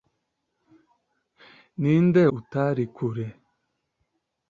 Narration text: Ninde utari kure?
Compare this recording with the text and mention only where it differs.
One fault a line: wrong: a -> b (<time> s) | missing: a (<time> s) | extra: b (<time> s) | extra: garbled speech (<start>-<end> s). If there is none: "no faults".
no faults